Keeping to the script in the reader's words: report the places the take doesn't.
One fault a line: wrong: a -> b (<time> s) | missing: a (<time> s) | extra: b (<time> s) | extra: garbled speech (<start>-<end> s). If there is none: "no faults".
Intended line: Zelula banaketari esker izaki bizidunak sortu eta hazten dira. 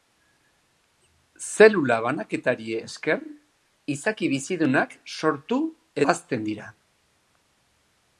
missing: eta (5.6 s)